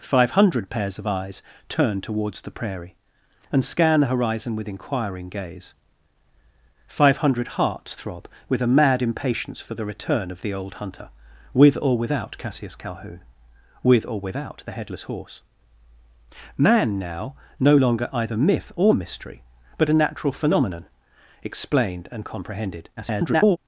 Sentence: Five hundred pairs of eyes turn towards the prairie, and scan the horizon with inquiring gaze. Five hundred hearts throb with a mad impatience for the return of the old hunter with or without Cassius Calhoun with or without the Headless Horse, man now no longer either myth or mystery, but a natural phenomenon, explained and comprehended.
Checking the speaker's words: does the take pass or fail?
fail